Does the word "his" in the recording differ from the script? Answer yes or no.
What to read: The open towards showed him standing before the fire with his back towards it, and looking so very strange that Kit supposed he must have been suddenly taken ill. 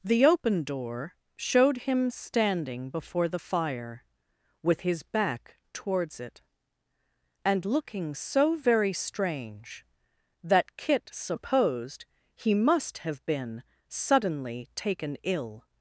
no